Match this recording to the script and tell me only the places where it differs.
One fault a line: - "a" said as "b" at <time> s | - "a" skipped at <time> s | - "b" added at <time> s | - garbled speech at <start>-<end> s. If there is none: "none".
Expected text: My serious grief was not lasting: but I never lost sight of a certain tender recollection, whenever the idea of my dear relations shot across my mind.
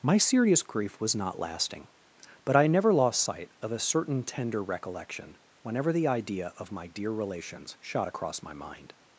none